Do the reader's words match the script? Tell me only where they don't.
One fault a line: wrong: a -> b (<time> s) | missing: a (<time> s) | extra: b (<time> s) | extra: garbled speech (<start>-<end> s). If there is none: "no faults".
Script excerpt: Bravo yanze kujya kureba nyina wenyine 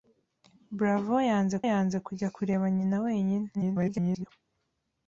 extra: yanze (1.7 s)
extra: garbled speech (3.5-4.3 s)